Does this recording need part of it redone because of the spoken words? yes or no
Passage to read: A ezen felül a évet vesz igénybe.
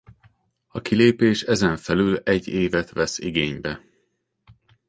yes